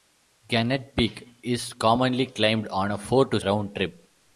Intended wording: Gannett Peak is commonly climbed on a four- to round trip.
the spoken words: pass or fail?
pass